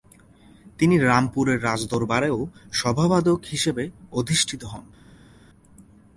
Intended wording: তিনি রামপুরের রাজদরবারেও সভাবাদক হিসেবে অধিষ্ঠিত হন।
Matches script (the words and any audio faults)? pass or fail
pass